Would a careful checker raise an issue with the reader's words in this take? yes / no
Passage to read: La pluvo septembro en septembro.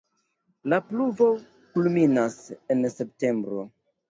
yes